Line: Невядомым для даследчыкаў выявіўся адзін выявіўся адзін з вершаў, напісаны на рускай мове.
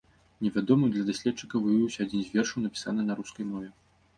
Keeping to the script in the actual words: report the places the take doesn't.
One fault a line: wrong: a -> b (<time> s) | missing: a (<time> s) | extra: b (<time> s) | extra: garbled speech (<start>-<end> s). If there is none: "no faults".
missing: выявіўся адзін (2.2 s)